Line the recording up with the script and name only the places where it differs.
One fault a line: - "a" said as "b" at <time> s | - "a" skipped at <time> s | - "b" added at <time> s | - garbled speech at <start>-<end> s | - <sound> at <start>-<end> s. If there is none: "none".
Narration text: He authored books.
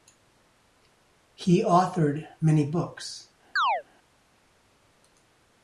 - "many" added at 2.4 s
- chirp at 3.6-3.8 s